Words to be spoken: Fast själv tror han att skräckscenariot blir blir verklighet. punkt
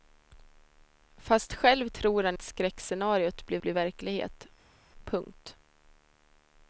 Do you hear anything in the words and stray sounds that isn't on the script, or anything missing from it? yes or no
no